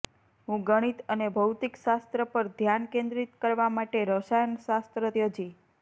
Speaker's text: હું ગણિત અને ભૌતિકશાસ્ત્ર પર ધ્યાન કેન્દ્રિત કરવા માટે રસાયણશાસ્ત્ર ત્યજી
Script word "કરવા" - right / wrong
right